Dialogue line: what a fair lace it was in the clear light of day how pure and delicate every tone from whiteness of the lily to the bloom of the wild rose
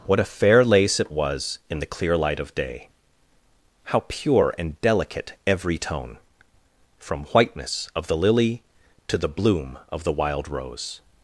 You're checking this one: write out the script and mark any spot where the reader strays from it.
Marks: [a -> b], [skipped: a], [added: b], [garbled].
what a fair lace it was in the clear light of day how pure and delicate every tone from whiteness of the lily to the bloom of the wild rose